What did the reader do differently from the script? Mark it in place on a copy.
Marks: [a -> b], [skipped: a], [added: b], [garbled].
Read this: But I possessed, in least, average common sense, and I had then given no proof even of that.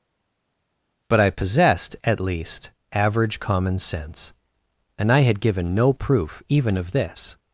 But I possessed, [in -> at] least, average common sense, and I had [skipped: then] given no proof even of [that. -> this]